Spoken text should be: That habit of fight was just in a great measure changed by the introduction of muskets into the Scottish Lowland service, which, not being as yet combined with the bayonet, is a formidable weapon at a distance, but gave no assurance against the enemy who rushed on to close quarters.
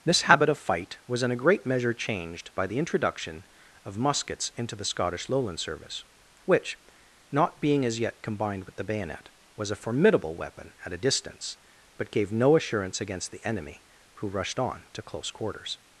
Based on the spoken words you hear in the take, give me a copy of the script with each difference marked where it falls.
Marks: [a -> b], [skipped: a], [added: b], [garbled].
[That -> This] habit of fight was [skipped: just] in a great measure changed by the introduction of muskets into the Scottish Lowland service, which, not being as yet combined with the bayonet, [is -> was] a formidable weapon at a distance, but gave no assurance against the enemy who rushed on to close quarters.